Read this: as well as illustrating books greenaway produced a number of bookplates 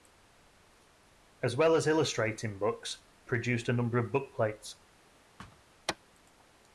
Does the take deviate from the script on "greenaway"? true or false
true